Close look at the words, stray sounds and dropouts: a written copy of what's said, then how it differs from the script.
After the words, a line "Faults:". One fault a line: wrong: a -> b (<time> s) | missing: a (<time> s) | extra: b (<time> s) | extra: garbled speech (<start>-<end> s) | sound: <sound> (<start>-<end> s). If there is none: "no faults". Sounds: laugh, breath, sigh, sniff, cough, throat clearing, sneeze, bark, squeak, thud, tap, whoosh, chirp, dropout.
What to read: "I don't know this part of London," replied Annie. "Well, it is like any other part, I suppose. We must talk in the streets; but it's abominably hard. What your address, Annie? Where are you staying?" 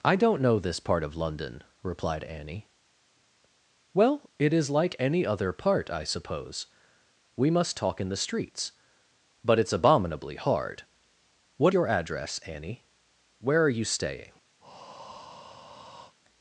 "I don't know this part of London," replied Annie. "Well, it is like any other part, I suppose. We must talk in the streets; but it's abominably hard. What your address, Annie? Where are you staying?"
Faults:
sound: breath (14.6-16.1 s)